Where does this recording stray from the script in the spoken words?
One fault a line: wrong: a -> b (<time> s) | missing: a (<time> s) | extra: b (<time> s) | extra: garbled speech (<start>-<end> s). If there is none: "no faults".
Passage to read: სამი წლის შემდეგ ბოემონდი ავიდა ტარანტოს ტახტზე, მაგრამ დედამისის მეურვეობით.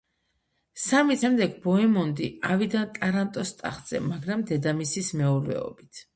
missing: წლის (1.2 s)